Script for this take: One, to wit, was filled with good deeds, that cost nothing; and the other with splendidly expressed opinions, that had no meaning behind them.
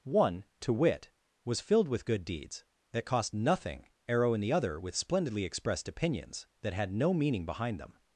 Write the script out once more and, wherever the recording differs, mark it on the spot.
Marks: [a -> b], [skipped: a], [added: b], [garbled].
One, to wit, was filled with good deeds, that cost nothing; [and -> arrow in] the other with splendidly expressed opinions, that had no meaning behind them.